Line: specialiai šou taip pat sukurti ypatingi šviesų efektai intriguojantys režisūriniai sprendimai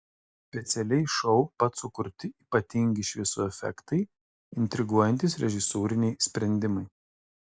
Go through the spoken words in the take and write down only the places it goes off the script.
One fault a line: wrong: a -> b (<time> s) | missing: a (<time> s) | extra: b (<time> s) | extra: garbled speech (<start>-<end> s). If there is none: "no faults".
missing: taip (1.4 s)